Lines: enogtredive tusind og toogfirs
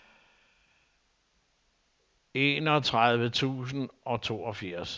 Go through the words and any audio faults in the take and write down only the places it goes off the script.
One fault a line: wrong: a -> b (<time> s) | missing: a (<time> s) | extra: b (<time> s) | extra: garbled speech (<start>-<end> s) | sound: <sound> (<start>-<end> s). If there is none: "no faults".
no faults